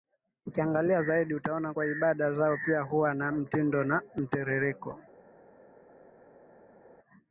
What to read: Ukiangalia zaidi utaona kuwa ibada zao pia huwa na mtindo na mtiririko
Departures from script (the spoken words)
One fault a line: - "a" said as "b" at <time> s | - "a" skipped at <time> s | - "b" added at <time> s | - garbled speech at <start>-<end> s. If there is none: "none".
none